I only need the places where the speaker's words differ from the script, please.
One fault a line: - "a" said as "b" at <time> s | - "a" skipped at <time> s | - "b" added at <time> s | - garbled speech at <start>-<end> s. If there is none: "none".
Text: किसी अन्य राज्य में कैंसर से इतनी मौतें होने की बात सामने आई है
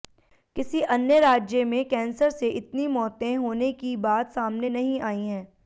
- "नहीं" added at 4.7 s